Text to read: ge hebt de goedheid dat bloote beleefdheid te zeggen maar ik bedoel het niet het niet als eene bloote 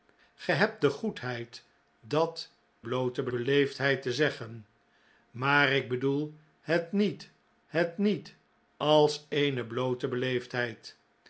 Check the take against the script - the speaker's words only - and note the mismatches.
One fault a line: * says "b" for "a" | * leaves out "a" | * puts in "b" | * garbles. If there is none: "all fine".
all fine